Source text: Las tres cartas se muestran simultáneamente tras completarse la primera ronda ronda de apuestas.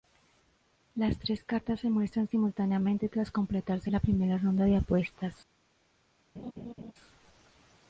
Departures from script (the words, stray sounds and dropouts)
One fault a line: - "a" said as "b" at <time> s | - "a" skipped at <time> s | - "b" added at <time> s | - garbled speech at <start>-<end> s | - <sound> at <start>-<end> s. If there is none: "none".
- "ronda" skipped at 4.6 s
- laugh at 6.4-6.9 s